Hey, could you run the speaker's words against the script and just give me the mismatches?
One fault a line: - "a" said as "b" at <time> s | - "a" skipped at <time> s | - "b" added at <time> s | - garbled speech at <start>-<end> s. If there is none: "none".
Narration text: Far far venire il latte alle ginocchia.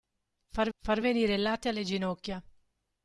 none